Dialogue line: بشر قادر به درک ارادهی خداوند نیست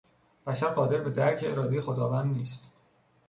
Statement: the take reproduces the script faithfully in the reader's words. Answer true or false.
true